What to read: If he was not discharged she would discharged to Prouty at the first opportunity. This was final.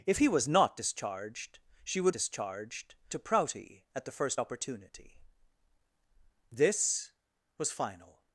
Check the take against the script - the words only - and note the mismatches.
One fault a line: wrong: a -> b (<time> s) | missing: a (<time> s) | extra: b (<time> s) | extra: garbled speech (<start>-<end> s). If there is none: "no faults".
no faults